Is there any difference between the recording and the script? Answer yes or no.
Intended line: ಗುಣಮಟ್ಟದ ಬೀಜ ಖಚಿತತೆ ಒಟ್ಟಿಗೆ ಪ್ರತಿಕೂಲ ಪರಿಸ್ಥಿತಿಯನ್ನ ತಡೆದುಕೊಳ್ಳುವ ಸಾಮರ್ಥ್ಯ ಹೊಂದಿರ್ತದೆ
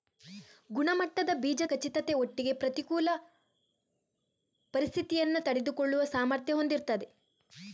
no